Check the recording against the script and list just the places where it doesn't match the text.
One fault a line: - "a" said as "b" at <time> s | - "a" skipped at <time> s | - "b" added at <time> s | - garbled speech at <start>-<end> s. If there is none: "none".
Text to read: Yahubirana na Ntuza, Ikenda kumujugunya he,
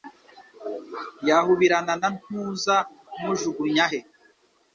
- "Ikenda" skipped at 2.8 s